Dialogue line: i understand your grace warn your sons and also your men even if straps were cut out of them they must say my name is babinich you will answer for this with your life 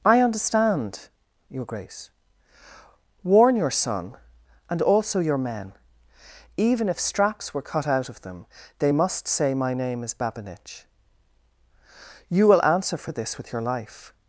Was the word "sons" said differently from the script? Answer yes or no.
yes